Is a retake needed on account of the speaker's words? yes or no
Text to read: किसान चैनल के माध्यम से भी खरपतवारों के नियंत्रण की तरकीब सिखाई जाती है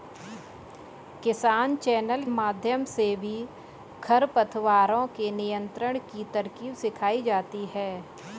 yes